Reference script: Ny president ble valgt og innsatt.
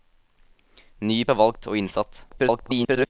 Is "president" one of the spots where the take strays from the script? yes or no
yes